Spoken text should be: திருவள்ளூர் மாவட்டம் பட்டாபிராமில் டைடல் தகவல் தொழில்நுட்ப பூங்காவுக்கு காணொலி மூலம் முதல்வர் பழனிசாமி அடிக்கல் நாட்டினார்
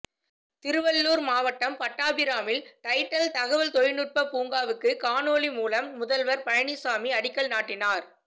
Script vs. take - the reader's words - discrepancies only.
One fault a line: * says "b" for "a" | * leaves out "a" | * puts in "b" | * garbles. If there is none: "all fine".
all fine